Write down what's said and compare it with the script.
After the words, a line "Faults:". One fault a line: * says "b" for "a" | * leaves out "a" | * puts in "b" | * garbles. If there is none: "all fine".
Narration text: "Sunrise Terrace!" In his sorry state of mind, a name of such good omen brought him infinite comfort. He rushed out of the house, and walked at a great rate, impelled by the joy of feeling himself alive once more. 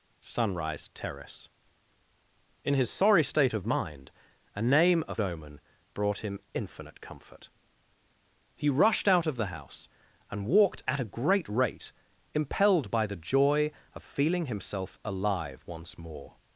"Sunrise Terrace!" In his sorry state of mind, a name of omen brought him infinite comfort. He rushed out of the house, and walked at a great rate, impelled by the joy of feeling himself alive once more.
Faults:
* leaves out "such good"